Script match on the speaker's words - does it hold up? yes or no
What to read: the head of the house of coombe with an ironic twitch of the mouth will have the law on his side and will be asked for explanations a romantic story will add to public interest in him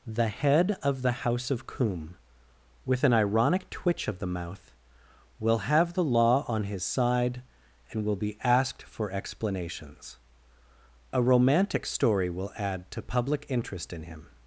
yes